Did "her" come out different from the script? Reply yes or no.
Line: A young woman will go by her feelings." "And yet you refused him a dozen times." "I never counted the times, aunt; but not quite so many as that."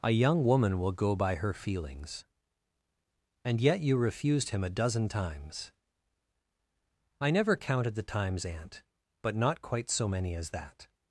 no